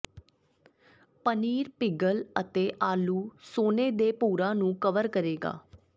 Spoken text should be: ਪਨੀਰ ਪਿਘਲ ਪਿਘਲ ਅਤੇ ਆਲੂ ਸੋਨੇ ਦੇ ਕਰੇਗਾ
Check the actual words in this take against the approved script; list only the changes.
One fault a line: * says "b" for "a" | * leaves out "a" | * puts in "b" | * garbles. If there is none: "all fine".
* leaves out "ਪਿਘਲ"
* puts in "ਭੂਰਾ ਨੂੰ ਕਵਰ"